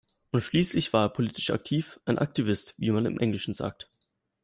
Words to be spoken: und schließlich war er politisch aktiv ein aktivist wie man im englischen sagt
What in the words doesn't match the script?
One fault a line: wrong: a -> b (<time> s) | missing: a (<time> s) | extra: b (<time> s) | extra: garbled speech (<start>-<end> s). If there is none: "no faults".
no faults